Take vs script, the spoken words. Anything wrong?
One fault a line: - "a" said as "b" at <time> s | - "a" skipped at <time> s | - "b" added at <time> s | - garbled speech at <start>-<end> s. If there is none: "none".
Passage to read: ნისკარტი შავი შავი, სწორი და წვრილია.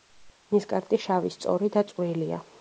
- "შავი" skipped at 1.3 s